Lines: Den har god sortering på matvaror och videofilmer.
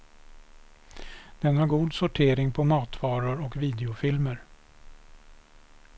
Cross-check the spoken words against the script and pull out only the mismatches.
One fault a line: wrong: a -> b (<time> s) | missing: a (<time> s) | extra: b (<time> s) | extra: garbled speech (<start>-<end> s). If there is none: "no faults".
no faults